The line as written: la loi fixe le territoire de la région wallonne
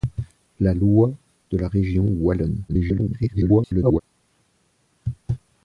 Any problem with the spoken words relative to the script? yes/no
yes